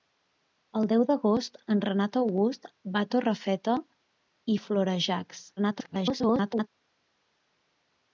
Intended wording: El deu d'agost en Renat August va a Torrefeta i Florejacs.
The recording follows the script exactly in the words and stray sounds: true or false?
false